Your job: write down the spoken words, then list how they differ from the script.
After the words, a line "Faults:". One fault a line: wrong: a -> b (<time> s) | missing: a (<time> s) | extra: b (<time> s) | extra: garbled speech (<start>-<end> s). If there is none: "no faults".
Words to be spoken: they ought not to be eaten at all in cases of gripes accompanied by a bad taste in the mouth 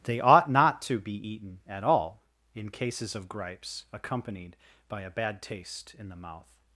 they ought not to be eaten at all in cases of gripes accompanied by a bad taste in the mouth
Faults:
no faults